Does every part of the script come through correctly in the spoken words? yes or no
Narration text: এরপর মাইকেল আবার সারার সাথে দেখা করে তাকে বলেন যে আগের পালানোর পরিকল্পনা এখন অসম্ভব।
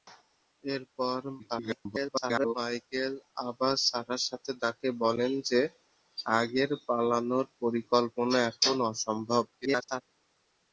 no